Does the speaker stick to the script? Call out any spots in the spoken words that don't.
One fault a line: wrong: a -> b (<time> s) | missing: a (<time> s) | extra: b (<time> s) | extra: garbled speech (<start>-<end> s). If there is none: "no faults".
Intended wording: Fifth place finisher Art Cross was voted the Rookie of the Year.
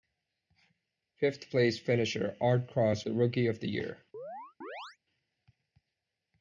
missing: was voted (3.0 s)